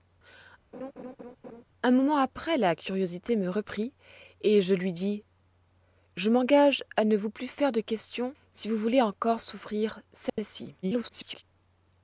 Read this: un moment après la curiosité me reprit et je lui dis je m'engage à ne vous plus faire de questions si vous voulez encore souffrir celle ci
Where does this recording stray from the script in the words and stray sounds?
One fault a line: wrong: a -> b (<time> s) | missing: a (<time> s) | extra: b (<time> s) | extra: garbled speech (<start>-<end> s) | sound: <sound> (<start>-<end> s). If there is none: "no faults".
sound: laugh (0.7-1.6 s)
sound: dropout (10.3-10.4 s)
extra: garbled speech (10.8-11.4 s)